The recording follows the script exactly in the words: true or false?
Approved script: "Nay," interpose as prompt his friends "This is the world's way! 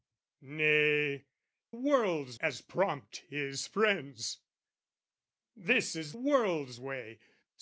false